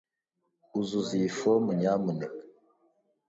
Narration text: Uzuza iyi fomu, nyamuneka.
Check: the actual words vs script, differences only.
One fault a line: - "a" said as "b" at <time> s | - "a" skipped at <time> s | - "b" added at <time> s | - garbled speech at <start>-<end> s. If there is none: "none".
none